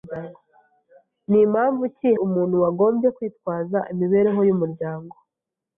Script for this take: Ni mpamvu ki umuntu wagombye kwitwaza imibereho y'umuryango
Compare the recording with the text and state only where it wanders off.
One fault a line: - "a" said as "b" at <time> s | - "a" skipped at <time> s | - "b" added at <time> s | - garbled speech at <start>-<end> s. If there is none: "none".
none